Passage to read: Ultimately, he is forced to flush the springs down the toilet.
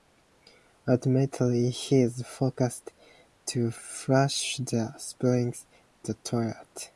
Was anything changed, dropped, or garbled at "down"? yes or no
yes